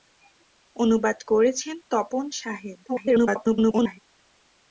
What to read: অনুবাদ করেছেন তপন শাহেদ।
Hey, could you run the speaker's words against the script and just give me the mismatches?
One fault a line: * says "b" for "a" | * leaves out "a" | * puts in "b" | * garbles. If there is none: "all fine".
* garbles